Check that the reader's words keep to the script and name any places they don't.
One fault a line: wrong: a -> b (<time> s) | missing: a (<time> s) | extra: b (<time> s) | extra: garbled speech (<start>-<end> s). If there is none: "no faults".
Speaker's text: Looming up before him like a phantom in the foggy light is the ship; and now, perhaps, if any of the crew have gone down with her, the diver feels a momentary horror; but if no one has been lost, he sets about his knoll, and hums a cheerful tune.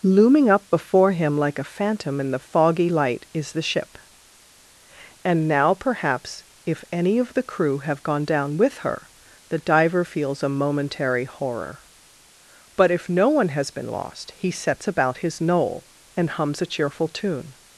no faults